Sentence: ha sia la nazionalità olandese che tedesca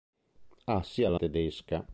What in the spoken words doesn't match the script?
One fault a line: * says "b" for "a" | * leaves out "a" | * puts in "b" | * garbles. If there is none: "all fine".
* leaves out "nazionalità olandese che"